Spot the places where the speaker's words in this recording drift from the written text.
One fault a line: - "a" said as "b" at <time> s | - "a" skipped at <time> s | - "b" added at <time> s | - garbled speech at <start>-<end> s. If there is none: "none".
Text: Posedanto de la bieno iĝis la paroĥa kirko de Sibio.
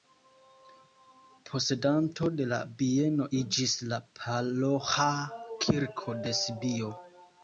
none